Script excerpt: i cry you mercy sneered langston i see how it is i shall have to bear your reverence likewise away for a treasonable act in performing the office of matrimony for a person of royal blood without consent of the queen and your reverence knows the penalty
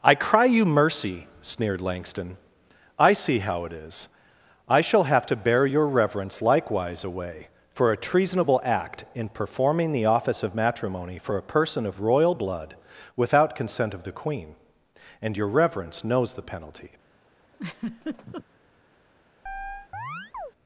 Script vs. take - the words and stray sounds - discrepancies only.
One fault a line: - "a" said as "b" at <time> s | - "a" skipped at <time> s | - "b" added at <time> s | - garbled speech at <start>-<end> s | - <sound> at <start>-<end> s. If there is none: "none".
- laugh at 17.5-18.4 s
- chirp at 19.5-20.5 s